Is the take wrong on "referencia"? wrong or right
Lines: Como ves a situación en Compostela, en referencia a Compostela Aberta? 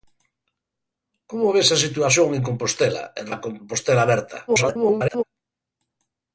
wrong